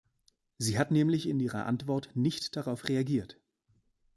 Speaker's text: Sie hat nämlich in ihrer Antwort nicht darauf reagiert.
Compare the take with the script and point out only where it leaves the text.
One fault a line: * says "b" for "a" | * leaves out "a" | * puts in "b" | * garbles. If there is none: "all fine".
all fine